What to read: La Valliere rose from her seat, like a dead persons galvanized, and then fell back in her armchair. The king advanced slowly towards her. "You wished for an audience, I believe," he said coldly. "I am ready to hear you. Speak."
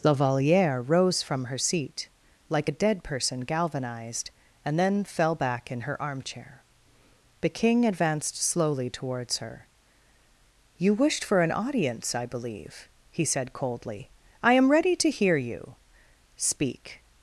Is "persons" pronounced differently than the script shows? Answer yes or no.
yes